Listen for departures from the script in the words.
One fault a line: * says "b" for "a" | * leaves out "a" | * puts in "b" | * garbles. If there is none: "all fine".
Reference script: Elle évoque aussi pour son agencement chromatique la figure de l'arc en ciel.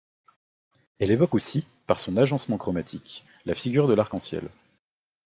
* says "par" for "pour"